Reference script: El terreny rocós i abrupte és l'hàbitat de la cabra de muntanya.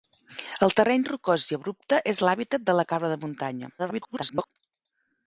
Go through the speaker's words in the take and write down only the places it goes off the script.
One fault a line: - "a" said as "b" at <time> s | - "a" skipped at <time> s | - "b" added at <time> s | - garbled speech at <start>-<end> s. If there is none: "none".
- garbled speech at 3.8-4.5 s